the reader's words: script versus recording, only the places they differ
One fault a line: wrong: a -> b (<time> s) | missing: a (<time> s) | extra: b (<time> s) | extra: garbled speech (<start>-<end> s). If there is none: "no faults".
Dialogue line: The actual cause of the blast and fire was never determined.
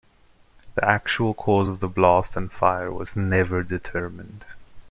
no faults